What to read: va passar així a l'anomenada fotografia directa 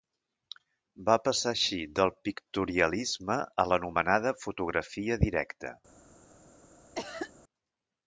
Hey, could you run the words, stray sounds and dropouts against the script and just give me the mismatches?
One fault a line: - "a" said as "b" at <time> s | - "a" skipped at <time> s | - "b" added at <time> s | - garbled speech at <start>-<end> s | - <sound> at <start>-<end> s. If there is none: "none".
- "del pictorialisme" added at 2.0 s
- cough at 6.9-7.3 s